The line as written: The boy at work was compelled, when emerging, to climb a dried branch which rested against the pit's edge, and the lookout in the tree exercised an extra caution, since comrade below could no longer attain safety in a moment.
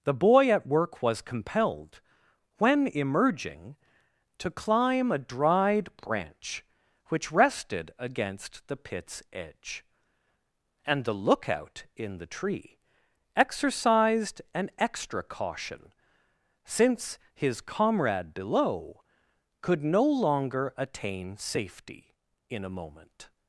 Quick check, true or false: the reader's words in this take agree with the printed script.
false